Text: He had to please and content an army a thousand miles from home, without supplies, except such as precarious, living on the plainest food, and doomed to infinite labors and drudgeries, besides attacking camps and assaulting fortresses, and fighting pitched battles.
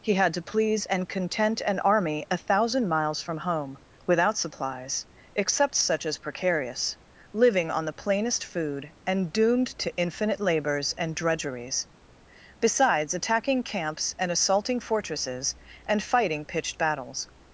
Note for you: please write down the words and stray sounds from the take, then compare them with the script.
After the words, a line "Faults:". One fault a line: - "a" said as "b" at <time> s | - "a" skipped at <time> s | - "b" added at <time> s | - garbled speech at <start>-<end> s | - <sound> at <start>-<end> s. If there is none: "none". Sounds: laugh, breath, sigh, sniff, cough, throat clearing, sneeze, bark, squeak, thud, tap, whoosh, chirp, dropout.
He had to please and content an army a thousand miles from home, without supplies, except such as precarious, living on the plainest food, and doomed to infinite labors and drudgeries, besides attacking camps and assaulting fortresses, and fighting pitched battles.
Faults:
none